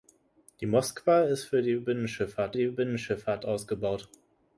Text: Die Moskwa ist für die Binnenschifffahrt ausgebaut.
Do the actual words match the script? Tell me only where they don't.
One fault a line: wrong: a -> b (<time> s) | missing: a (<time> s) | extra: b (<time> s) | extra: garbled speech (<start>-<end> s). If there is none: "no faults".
extra: die Binnenschifffahrt (2.5 s)